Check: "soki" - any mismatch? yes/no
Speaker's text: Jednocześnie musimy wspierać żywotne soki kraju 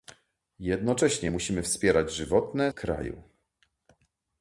yes